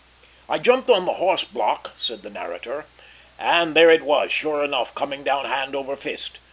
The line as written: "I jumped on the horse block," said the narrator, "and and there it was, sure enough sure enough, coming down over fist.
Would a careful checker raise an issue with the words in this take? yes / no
yes